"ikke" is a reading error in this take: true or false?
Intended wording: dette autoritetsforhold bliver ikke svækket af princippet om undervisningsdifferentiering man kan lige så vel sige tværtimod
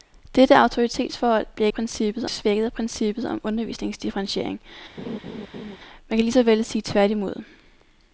true